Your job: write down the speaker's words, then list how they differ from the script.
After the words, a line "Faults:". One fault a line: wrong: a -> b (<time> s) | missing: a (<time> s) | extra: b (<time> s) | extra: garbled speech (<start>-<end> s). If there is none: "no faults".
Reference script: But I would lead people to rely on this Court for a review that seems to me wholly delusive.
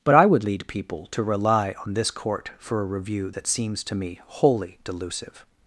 But I would lead people to rely on this Court for a review that seems to me wholly delusive.
Faults:
no faults